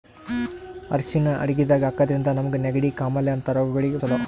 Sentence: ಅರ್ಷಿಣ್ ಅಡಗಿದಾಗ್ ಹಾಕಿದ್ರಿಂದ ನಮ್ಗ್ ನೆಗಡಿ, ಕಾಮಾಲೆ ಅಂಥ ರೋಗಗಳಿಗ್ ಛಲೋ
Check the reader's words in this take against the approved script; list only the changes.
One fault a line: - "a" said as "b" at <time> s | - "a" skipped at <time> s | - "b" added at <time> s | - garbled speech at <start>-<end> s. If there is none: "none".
none